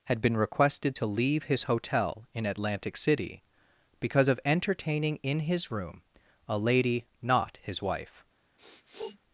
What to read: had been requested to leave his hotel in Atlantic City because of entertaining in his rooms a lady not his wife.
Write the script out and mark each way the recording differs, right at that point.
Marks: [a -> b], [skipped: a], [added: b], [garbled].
had been requested to leave his hotel in Atlantic City because of entertaining in his [rooms -> room] a lady not his wife.